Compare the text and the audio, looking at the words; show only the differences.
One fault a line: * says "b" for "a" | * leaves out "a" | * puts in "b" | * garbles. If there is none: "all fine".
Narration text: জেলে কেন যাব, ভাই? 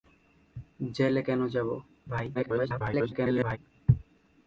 * garbles